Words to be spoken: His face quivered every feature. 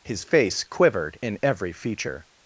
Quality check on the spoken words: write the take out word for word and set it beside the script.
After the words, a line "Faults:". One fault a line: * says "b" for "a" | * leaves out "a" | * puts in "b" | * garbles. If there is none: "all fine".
His face quivered in every feature.
Faults:
* puts in "in"